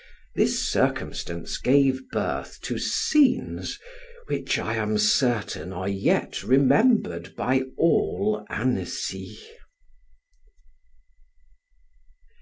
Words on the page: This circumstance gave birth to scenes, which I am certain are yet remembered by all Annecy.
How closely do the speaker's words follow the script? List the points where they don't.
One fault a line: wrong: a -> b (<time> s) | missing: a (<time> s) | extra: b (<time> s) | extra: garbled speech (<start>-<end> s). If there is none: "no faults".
no faults